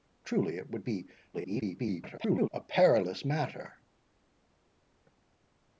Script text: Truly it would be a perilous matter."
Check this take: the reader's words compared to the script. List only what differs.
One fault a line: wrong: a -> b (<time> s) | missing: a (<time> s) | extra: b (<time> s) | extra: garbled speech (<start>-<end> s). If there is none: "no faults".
extra: garbled speech (1.3-2.5 s)